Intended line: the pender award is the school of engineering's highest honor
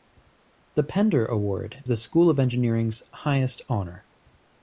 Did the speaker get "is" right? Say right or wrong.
wrong